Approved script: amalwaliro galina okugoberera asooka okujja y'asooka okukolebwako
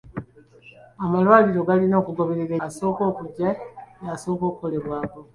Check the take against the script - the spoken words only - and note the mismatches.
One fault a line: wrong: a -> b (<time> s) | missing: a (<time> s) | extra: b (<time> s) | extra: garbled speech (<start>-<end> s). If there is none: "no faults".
no faults